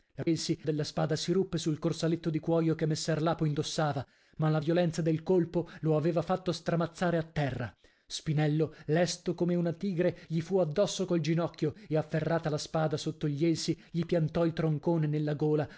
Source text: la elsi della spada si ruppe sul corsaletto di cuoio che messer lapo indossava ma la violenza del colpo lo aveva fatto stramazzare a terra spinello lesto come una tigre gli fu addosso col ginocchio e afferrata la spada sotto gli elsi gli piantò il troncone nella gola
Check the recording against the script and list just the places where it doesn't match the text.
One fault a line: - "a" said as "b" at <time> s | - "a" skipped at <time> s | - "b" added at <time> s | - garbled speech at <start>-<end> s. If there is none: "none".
none